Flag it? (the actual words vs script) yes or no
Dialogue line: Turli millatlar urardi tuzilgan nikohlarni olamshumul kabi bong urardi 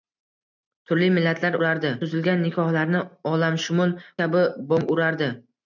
no